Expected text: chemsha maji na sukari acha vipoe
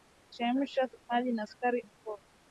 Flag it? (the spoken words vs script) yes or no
yes